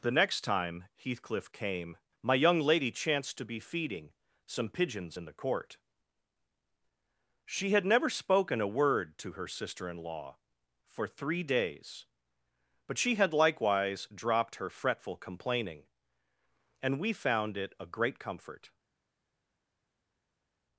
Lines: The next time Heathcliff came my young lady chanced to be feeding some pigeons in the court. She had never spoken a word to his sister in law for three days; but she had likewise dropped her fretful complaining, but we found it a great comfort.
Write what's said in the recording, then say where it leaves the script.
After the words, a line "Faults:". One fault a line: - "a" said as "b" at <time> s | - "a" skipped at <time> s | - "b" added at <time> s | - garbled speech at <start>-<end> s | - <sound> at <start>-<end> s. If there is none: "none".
The next time Heathcliff came my young lady chanced to be feeding some pigeons in the court. She had never spoken a word to her sister in law for three days; but she had likewise dropped her fretful complaining, and we found it a great comfort.
Faults:
- "his" said as "her" at 9.3 s
- "but" said as "and" at 16.8 s